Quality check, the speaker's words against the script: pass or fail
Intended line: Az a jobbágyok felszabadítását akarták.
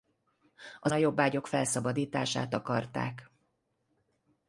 pass